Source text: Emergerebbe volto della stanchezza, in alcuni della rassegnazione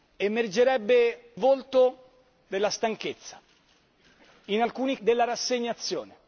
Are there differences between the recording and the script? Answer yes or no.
no